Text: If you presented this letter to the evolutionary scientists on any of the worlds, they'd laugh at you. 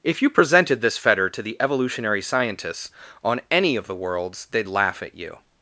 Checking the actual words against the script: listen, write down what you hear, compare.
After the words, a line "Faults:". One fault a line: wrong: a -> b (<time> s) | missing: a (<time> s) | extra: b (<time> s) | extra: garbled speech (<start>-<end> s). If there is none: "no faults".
If you presented this fetter to the evolutionary scientists on any of the worlds, they'd laugh at you.
Faults:
wrong: letter -> fetter (1.0 s)